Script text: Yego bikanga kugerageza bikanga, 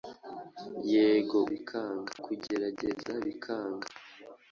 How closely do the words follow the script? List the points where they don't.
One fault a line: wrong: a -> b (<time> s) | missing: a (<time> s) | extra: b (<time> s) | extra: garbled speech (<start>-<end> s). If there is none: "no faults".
no faults